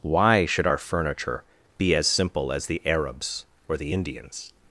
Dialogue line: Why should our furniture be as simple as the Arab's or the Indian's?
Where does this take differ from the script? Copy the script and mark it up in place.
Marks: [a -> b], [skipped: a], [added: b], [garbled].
Why should our furniture be as simple as the Arab's or the Indian's?